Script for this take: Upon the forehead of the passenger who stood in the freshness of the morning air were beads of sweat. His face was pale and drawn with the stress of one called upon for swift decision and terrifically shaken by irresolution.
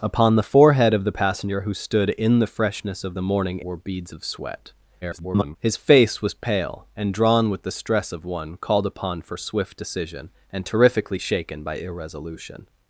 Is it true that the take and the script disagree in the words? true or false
true